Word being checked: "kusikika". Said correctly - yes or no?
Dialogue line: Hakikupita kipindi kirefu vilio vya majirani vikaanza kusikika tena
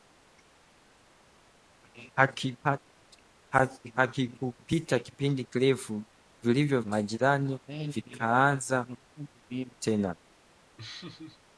no